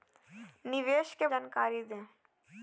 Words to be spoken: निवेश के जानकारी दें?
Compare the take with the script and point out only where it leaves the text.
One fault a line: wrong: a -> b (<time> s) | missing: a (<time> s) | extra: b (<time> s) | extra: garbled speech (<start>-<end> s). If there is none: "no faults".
no faults